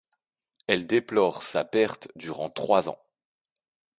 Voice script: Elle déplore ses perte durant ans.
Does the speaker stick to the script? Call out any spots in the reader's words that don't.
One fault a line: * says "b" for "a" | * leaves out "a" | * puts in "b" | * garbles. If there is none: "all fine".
* says "sa" for "ses"
* puts in "trois"